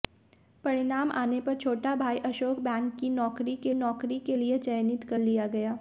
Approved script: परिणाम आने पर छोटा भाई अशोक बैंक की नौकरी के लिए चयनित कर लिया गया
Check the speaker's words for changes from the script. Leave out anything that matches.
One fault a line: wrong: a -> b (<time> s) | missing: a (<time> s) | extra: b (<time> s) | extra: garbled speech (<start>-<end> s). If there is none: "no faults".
extra: नौकरी के (3.7 s)